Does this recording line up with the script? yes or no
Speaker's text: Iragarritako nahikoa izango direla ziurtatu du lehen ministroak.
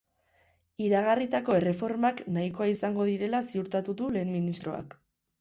no